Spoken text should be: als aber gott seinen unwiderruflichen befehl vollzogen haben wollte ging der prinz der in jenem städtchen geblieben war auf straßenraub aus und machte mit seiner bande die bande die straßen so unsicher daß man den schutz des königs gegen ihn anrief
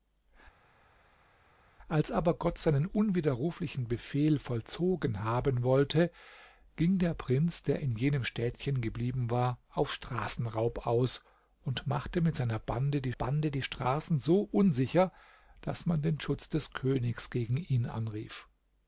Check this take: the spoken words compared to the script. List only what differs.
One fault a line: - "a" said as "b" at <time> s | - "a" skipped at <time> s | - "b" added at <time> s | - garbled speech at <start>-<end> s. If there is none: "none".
none